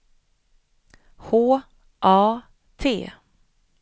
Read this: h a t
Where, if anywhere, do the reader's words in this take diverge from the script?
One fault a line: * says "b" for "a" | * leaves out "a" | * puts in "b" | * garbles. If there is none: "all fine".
all fine